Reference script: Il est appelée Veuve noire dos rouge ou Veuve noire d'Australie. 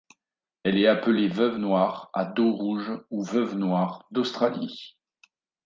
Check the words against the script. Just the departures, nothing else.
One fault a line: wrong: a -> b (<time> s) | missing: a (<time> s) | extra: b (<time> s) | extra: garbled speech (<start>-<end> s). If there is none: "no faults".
wrong: Il -> Elle (0.6 s)
extra: à (2.1 s)